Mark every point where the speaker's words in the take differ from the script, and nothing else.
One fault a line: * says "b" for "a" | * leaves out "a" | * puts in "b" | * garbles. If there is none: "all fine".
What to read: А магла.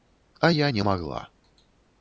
* puts in "я не"